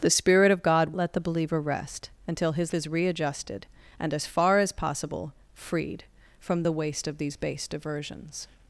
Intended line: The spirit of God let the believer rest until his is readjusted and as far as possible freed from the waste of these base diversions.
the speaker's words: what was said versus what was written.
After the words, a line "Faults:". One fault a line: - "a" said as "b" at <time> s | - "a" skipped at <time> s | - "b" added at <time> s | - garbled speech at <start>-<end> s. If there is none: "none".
The spirit of God let the believer rest until his is readjusted and as far as possible freed from the waste of these base diversions.
Faults:
none